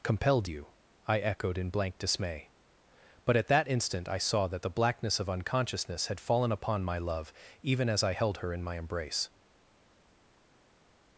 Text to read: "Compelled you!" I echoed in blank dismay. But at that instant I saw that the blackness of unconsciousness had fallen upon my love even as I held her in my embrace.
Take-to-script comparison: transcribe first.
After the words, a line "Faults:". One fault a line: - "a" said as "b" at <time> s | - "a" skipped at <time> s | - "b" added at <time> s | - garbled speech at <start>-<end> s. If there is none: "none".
"Compelled you!" I echoed in blank dismay. But at that instant I saw that the blackness of unconsciousness had fallen upon my love even as I held her in my embrace.
Faults:
none